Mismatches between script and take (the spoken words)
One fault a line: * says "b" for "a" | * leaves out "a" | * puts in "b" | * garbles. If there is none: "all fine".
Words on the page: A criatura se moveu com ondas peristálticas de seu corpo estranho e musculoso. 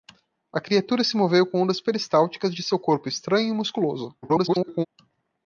* garbles